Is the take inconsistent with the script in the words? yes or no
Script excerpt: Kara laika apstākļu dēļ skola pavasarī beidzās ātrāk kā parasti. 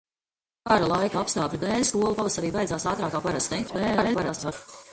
yes